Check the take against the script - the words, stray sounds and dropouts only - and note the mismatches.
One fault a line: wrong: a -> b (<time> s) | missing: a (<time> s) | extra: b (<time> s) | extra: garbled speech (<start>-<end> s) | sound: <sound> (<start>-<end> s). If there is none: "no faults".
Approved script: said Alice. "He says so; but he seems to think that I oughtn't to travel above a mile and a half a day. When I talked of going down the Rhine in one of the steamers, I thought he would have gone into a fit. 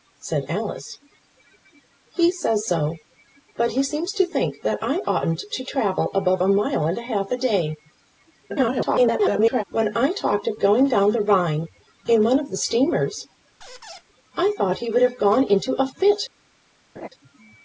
extra: garbled speech (8.5-9.6 s)
sound: squeak (13.6-14.0 s)
sound: laugh (17.0-17.1 s)